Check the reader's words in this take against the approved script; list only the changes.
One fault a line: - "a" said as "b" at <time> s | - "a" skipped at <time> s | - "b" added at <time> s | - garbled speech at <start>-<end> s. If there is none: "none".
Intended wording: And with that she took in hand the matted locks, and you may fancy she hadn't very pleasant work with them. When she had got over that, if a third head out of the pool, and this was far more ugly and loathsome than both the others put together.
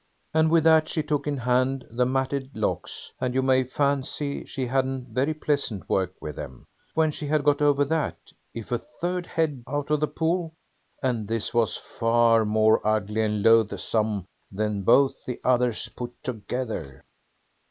none